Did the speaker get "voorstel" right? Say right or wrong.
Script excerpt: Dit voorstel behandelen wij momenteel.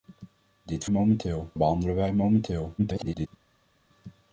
wrong